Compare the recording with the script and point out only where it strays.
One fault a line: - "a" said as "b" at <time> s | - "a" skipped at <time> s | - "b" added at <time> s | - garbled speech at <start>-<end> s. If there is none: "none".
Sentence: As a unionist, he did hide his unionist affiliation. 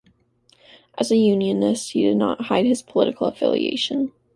- "not" added at 2.2 s
- "unionist" said as "political" at 2.8 s